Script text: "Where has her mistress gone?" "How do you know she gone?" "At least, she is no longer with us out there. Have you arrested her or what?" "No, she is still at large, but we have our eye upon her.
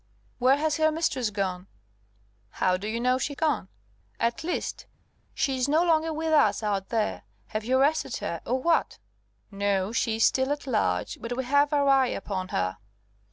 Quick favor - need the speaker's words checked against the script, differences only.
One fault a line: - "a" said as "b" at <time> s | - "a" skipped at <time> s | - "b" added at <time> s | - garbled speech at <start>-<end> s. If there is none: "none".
none